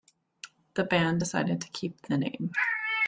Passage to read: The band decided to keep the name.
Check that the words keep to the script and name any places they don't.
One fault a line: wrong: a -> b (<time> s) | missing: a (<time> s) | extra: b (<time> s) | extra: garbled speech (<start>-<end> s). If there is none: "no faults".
no faults